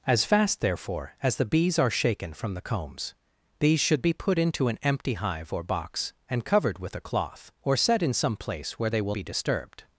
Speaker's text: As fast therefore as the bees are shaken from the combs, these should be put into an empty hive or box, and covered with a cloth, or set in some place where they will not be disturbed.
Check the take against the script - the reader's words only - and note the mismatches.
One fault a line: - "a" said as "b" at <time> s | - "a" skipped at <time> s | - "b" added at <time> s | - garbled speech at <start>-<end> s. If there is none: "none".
- "not" skipped at 9.2 s